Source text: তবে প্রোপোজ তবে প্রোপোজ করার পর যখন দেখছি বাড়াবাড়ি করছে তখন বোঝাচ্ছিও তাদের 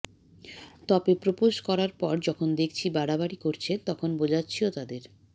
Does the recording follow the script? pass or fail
fail